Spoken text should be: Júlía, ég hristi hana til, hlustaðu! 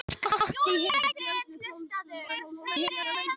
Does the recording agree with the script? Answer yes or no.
no